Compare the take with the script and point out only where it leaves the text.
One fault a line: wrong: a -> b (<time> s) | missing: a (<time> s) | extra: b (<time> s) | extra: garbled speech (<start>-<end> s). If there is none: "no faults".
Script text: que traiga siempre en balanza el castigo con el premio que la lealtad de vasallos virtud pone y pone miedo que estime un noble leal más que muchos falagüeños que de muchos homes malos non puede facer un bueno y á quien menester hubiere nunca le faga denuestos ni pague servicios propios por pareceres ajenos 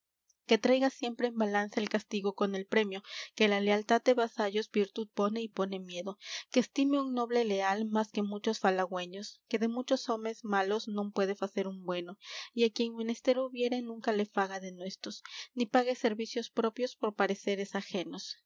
no faults